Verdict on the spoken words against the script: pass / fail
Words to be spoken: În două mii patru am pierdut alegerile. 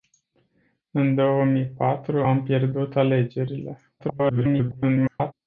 fail